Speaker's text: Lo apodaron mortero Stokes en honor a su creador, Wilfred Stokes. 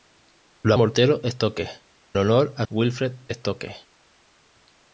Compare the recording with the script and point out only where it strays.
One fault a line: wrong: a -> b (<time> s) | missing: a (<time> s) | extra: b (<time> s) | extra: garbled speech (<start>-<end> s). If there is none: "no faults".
missing: apodaron (0.7 s)
missing: en (1.8 s)
missing: su creador (2.7 s)